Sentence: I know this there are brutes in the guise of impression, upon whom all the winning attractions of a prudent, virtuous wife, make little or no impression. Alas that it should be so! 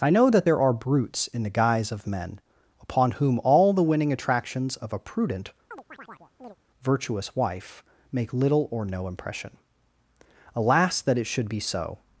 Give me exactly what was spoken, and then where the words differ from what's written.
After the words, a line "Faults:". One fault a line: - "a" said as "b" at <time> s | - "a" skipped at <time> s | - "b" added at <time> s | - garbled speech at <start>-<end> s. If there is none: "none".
I know that there are brutes in the guise of men, upon whom all the winning attractions of a prudent, virtuous wife, make little or no impression. Alas that it should be so!
Faults:
- "this" said as "that" at 0.3 s
- "impression" said as "men" at 2.1 s